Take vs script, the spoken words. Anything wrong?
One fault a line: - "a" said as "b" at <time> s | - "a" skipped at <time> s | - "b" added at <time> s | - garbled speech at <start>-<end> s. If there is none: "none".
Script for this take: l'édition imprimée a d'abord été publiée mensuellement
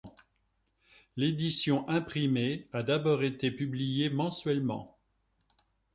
none